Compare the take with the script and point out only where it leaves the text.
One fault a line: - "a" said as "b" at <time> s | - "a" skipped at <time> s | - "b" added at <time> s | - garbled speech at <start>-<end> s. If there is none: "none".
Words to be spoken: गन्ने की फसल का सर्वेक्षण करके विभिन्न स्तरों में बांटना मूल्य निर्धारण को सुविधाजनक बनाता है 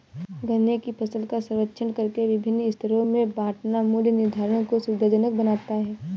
none